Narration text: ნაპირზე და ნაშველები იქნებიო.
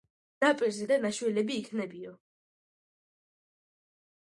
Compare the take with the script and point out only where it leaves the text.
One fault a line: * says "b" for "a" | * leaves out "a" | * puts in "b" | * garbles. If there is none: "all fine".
all fine